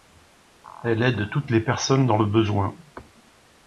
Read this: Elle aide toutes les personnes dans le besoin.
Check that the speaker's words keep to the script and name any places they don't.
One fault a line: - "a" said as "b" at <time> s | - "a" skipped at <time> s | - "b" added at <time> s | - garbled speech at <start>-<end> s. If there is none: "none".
none